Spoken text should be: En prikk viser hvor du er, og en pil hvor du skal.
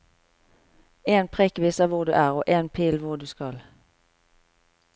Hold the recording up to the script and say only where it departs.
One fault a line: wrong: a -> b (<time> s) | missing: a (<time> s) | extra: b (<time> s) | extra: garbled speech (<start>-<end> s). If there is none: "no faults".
no faults